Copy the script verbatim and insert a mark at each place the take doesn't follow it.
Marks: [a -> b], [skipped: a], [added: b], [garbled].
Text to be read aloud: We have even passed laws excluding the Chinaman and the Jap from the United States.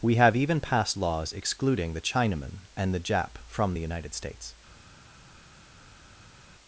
We have even passed laws excluding the Chinaman and the Jap from the United States.